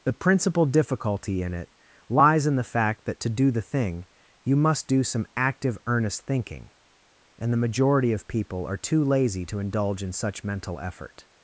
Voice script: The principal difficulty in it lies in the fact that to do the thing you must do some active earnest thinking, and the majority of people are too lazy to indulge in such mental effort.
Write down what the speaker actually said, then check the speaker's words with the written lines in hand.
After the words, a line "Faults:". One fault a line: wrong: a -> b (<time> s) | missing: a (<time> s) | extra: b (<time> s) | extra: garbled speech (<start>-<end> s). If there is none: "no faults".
The principal difficulty in it lies in the fact that to do the thing you must do some active earnest thinking, and the majority of people are too lazy to indulge in such mental effort.
Faults:
no faults